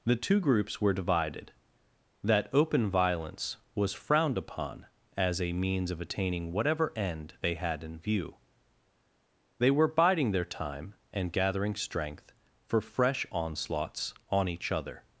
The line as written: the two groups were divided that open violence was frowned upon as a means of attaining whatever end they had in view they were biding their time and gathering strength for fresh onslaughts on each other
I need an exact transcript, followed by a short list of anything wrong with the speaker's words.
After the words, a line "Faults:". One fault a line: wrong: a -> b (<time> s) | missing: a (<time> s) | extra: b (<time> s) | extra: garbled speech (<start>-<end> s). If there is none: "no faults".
the two groups were divided that open violence was frowned upon as a means of attaining whatever end they had in view they were biding their time and gathering strength for fresh onslaughts on each other
Faults:
no faults